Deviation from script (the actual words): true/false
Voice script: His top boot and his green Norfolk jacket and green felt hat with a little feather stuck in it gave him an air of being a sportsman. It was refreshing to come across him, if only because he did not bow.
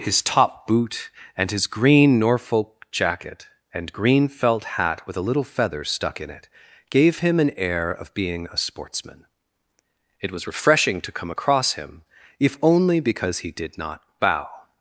false